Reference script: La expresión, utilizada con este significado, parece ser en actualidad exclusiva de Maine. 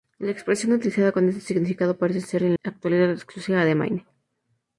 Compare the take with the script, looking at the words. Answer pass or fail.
pass